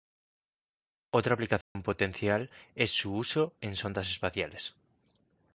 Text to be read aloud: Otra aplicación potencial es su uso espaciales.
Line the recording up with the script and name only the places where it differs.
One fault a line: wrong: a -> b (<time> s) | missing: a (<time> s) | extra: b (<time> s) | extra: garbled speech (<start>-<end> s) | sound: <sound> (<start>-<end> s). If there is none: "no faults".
sound: dropout (1.6-1.8 s)
extra: en sondas (3.6 s)